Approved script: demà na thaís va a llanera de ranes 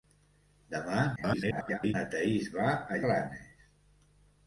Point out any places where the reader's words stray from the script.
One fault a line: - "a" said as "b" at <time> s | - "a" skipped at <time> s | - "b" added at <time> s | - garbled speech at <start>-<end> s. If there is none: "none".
- garbled speech at 1.2-1.9 s
- "llanera de" skipped at 3.0 s